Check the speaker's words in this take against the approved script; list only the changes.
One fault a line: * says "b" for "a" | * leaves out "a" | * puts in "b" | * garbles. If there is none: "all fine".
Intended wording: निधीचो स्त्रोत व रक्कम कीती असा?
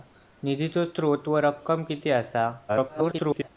* garbles